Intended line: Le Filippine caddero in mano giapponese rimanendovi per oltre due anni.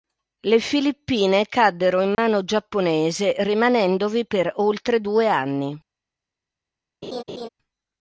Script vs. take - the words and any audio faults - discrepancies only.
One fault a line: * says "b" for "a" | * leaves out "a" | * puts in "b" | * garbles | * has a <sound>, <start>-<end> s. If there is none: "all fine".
* has a dropout, 2.1-2.2 s
* has a laugh, 7.0-7.5 s